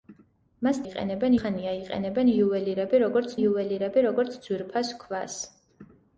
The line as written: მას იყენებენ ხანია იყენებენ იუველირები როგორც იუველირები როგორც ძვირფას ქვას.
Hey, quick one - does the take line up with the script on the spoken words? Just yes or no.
yes